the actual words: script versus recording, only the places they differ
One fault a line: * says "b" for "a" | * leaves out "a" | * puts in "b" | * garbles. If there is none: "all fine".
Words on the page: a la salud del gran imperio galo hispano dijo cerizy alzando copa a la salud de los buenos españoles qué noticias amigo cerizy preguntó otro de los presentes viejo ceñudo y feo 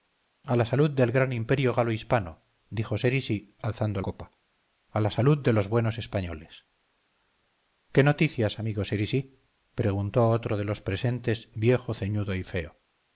all fine